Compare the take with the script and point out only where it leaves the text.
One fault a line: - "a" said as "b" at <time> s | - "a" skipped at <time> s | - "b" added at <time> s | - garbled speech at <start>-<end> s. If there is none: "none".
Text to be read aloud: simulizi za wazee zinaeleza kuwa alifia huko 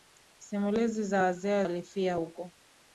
- "zinaeleza kuwa" skipped at 1.7 s